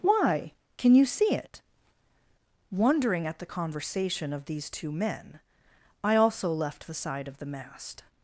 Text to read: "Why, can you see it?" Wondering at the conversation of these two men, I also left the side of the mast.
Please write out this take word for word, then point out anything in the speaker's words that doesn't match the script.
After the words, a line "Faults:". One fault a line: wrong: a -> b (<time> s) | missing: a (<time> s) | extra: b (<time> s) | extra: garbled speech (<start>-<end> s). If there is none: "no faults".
"Why, can you see it?" Wondering at the conversation of these two men, I also left the side of the mast.
Faults:
no faults